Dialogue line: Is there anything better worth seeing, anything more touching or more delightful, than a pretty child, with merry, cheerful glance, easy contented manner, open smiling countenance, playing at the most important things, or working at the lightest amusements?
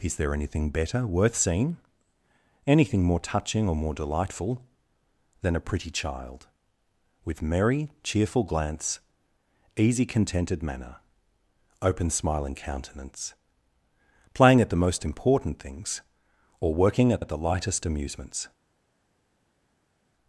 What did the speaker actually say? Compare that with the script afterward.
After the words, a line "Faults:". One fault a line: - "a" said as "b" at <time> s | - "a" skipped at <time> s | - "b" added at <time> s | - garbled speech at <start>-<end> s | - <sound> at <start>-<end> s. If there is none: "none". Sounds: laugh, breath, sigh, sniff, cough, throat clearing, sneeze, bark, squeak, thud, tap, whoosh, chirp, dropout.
Is there anything better worth seeing, anything more touching or more delightful, than a pretty child, with merry, cheerful glance, easy contented manner, open smiling countenance, playing at the most important things, or working at at the lightest amusements?
Faults:
- "at" added at 17.2 s